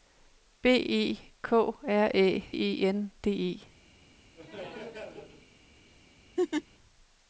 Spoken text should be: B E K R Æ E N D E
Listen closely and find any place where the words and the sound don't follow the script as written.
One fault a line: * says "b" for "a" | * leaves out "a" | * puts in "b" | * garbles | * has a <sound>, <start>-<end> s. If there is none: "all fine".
* has a laugh, 4.4-5.5 s
* has a laugh, 6.4-6.6 s